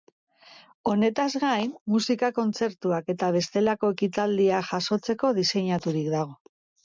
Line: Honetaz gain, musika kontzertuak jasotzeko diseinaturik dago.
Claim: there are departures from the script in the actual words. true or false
true